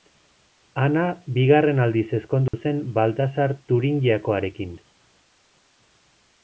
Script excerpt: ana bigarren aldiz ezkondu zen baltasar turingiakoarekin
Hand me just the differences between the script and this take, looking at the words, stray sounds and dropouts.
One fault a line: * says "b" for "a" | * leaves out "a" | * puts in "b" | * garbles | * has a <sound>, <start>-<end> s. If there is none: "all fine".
* has a dropout, 2.5-2.5 s